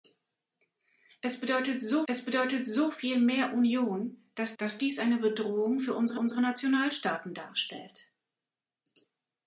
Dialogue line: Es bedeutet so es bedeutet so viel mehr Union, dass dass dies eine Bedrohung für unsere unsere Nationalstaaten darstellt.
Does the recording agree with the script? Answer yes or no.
yes